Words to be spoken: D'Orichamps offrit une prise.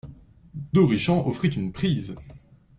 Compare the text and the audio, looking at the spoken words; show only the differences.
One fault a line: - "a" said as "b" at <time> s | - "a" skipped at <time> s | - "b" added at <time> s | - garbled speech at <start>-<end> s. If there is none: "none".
none